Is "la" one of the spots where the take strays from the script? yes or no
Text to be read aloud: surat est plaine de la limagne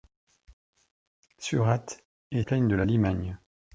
no